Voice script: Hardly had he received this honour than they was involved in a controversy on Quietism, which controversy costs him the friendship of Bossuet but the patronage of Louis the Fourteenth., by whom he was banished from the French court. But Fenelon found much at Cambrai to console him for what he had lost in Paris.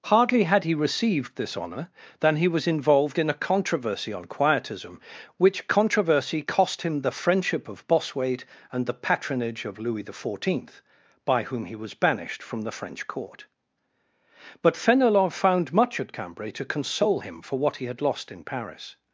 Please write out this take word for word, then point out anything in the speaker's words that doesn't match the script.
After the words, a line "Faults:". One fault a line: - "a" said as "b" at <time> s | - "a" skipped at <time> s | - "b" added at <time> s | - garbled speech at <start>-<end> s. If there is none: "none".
Hardly had he received this honour than he was involved in a controversy on Quietism, which controversy cost him the friendship of Bossuet and the patronage of Louis the Fourteenth., by whom he was banished from the French court. But Fenelon found much at Cambrai to console him for what he had lost in Paris.
Faults:
- "they" said as "he" at 2.4 s
- "costs" said as "cost" at 6.4 s
- "but" said as "and" at 8.7 s